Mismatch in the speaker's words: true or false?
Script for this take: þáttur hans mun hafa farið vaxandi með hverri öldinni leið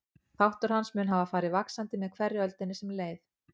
true